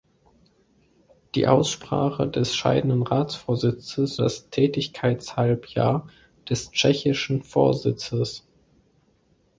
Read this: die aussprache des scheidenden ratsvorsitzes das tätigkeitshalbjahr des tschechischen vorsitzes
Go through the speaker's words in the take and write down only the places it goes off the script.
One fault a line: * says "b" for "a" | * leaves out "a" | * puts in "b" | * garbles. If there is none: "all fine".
all fine